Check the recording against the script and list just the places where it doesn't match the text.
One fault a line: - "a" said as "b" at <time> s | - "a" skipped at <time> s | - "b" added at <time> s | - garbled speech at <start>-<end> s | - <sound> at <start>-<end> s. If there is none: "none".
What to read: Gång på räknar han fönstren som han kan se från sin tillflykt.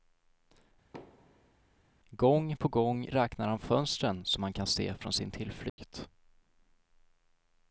- thud at 0.9-1.5 s
- "gång" added at 2.7 s
- dropout at 5.7-5.8 s